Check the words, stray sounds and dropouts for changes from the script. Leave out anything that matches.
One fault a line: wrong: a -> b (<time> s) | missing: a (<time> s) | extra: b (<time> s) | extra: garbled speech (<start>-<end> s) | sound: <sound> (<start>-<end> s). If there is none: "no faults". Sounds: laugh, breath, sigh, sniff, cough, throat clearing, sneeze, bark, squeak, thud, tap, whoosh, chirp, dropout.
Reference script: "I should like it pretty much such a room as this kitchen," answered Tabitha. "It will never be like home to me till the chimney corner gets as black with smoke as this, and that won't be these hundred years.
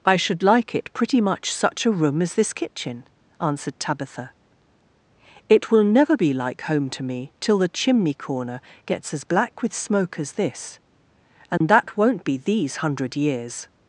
sound: dropout (11.6-11.6 s)